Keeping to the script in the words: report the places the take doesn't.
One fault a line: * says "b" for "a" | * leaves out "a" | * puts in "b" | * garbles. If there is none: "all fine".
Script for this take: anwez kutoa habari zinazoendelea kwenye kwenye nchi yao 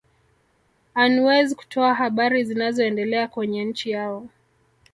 * leaves out "kwenye"